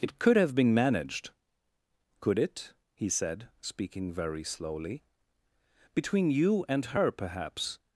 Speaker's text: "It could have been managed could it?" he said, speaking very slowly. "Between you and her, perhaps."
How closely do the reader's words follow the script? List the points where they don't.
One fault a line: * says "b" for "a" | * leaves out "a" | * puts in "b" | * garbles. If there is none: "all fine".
all fine